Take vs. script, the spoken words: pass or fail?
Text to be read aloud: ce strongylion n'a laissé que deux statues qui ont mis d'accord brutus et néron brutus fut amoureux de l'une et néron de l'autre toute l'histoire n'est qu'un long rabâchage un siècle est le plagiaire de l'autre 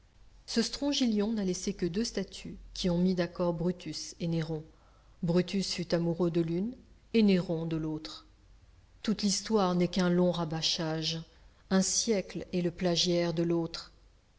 pass